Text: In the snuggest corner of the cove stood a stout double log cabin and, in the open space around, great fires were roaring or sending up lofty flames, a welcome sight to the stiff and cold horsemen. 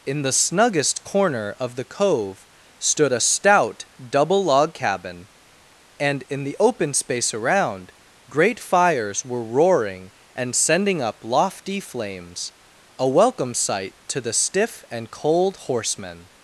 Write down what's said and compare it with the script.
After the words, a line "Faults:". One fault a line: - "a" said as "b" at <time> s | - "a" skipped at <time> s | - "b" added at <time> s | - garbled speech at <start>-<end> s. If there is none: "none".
In the snuggest corner of the cove stood a stout double log cabin and, in the open space around, great fires were roaring and sending up lofty flames, a welcome sight to the stiff and cold horsemen.
Faults:
- "or" said as "and" at 10.3 s